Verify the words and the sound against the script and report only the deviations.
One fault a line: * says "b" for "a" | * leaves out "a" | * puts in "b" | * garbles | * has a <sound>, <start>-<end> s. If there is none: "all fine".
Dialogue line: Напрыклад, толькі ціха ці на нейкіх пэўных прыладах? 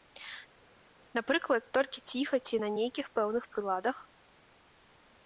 all fine